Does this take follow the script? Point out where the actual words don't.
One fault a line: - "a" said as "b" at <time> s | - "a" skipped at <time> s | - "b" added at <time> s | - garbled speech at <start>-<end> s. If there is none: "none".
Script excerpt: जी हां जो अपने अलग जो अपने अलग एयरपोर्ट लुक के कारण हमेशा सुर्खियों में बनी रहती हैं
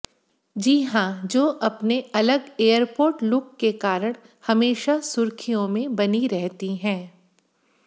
- "जो अपने अलग" skipped at 2.5 s